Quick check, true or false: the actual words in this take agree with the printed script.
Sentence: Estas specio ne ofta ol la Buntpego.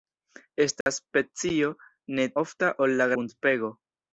true